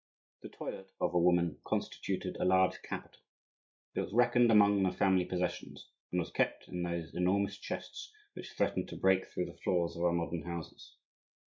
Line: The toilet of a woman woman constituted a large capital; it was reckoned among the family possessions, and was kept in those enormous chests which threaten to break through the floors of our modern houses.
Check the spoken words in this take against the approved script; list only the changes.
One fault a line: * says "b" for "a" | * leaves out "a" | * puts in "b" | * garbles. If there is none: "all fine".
* leaves out "woman"